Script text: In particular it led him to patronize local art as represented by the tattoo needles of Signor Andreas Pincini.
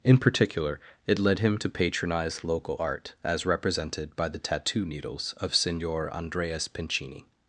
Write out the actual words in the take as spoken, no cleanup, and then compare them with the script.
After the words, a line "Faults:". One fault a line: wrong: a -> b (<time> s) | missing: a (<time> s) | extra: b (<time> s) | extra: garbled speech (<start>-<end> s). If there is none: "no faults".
In particular it led him to patronize local art as represented by the tattoo needles of Signor Andreas Pincini.
Faults:
no faults